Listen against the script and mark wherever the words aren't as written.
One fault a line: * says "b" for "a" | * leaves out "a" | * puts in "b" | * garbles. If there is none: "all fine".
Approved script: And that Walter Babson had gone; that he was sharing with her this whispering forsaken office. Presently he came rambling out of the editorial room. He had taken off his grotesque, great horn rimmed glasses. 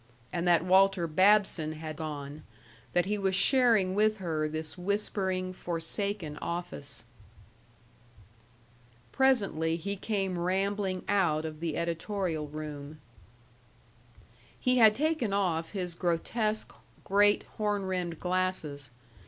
all fine